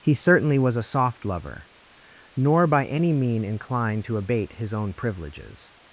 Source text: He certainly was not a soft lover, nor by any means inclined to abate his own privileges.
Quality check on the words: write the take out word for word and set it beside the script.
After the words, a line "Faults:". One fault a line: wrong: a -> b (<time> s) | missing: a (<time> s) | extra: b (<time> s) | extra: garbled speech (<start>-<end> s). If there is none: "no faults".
He certainly was a soft lover, nor by any mean inclined to abate his own privileges.
Faults:
missing: not (0.8 s)
wrong: means -> mean (3.1 s)